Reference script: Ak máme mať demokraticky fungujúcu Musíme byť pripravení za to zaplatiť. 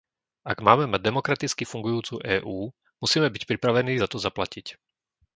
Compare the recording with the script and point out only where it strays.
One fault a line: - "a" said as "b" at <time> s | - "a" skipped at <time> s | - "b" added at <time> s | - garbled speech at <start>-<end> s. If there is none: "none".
- "EÚ" added at 2.2 s